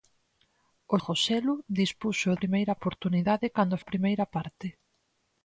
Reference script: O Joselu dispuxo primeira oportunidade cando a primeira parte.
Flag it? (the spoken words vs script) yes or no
no